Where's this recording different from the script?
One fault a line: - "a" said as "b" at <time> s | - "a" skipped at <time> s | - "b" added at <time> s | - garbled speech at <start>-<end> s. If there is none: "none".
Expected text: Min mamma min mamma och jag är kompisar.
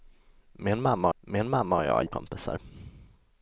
none